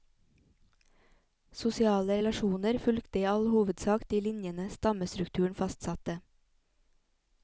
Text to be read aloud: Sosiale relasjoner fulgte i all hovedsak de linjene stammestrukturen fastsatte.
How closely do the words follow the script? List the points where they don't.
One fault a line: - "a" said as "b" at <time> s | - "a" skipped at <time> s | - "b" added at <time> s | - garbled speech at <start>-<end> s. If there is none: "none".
none